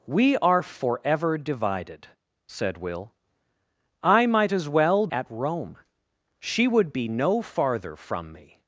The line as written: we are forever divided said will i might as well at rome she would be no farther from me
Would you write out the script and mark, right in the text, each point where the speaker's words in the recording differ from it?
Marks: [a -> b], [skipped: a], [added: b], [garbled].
we are forever divided said will i might as well at rome she would be no farther from me